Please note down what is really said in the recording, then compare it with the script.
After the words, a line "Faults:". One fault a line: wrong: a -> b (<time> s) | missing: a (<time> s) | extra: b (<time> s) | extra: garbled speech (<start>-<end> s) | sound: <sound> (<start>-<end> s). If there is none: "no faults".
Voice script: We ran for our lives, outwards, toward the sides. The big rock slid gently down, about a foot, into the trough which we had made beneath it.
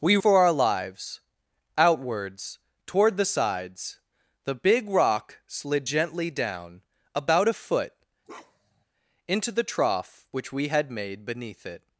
We for our lives, outwards, toward the sides. The big rock slid gently down, about a foot, into the trough which we had made beneath it.
Faults:
missing: ran (0.2 s)
sound: bark (8.3-8.9 s)